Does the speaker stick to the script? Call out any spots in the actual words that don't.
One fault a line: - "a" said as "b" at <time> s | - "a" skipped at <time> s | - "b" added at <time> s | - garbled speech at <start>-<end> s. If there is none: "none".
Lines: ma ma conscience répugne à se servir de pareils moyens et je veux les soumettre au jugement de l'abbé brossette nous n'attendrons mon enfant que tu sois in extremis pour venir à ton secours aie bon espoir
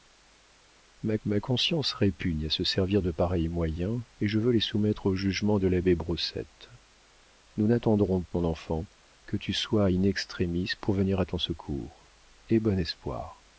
none